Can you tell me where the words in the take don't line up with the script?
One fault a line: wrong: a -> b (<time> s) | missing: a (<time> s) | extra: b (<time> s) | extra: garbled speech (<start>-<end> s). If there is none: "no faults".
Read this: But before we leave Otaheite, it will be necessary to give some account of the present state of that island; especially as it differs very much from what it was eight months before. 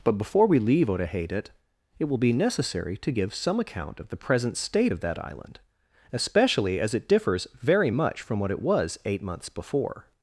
no faults